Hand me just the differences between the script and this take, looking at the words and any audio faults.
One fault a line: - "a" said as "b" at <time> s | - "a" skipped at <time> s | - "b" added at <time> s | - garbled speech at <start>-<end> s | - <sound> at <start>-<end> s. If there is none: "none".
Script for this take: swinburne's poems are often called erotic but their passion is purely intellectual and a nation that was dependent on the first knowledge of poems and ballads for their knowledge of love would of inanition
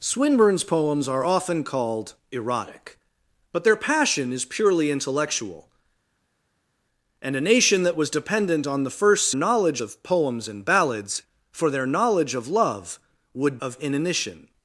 none